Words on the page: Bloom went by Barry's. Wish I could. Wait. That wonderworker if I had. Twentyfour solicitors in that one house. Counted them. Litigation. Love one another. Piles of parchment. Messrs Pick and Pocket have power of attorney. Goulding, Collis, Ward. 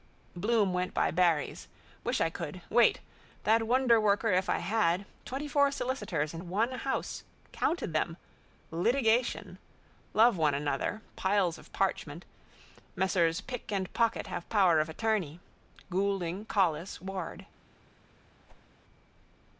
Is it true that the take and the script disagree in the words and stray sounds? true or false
true